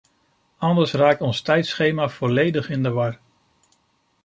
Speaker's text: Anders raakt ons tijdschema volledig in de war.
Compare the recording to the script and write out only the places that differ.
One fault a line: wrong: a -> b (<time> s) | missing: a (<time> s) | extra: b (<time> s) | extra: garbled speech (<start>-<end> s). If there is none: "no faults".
no faults